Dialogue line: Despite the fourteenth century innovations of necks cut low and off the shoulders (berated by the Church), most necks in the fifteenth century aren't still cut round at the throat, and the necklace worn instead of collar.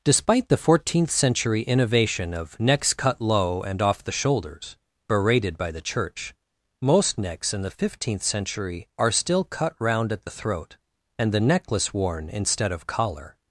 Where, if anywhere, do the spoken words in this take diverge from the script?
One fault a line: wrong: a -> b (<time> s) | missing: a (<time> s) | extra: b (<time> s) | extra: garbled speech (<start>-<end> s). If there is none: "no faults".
wrong: innovations -> innovation (1.6 s)
wrong: aren't -> are (9.0 s)